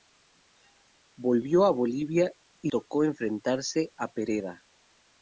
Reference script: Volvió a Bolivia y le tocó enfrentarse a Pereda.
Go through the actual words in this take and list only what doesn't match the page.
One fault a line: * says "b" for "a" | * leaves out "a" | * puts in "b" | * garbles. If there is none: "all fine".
* leaves out "le"